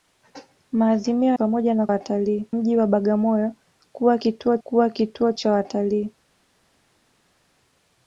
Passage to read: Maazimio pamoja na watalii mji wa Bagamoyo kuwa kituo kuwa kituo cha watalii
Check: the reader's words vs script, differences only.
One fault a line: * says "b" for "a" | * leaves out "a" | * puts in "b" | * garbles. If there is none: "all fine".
all fine